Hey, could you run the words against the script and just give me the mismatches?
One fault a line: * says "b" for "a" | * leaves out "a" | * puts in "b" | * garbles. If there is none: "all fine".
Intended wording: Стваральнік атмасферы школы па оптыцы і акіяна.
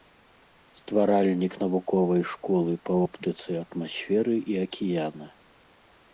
* says "навуковай" for "атмасферы"
* puts in "атмасферы"